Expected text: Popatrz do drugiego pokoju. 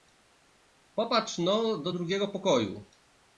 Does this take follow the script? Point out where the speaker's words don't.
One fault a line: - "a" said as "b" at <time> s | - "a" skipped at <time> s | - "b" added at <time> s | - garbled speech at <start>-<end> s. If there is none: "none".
- "no" added at 1.4 s